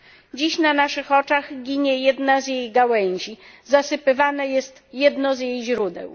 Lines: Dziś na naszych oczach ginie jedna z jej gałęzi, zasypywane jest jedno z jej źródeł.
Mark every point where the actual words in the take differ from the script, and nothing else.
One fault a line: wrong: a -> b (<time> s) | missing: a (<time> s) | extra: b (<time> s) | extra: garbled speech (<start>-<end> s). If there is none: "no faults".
no faults